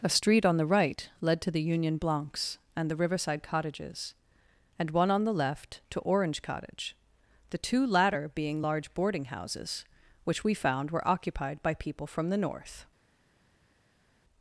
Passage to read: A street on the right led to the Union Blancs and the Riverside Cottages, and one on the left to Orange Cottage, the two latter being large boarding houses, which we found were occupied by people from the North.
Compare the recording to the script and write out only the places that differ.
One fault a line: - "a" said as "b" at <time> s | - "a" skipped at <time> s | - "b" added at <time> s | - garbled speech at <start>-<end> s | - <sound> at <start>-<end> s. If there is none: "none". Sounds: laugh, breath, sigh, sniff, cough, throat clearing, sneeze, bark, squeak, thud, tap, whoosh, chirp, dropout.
none